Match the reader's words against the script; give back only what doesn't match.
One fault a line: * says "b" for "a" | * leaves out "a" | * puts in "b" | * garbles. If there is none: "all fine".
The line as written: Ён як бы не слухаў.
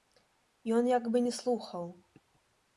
all fine